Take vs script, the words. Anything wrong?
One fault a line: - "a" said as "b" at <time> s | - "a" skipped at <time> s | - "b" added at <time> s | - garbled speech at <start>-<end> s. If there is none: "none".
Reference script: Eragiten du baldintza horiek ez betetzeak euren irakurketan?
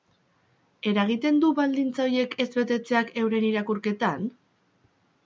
none